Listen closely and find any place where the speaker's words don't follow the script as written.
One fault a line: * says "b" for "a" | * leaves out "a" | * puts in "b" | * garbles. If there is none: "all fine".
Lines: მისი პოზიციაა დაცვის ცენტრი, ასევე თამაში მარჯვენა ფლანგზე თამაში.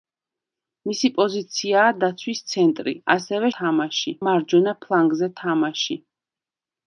all fine